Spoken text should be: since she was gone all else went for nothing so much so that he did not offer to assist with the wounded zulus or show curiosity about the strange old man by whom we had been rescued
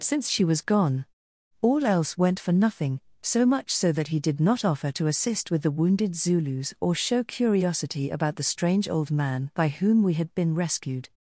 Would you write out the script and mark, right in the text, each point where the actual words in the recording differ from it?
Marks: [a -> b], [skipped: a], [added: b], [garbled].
since she was gone all else went for nothing so much so that he did not offer to assist with the wounded zulus or show curiosity about the strange old man by whom we had been rescued